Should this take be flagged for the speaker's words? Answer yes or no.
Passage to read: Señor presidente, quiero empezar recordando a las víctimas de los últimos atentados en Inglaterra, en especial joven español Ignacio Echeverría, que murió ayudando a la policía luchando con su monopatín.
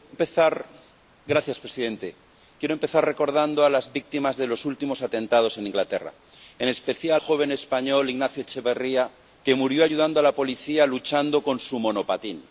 no